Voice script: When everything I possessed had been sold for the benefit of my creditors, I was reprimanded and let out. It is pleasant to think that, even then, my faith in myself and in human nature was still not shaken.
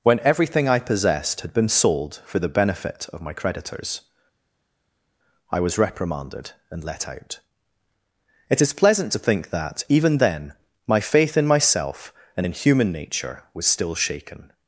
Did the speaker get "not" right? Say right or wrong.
wrong